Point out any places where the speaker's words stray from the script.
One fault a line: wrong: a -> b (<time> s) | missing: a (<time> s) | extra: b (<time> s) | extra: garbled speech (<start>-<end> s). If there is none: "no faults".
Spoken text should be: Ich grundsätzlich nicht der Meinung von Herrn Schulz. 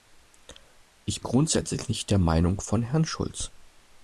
no faults